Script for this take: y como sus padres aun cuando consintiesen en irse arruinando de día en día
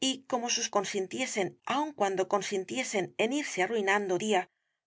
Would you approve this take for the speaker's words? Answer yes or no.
no